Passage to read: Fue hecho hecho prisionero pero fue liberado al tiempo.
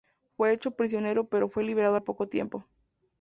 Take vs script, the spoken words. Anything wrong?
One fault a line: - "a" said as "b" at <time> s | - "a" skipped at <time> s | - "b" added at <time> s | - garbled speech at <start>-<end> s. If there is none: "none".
- "hecho" skipped at 0.7 s
- "poco" added at 2.0 s